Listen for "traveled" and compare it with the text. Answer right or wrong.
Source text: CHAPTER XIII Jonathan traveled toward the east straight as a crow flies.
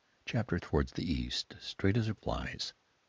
wrong